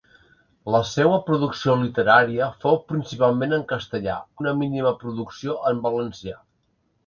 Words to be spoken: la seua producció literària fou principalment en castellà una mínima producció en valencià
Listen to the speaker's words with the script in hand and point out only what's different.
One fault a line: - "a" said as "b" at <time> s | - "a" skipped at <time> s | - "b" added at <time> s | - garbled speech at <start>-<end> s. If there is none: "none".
none